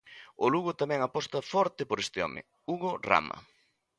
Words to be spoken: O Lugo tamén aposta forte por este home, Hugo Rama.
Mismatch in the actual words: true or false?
false